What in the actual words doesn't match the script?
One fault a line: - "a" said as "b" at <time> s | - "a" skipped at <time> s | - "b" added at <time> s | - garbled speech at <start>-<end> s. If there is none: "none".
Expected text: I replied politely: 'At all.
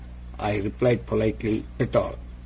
none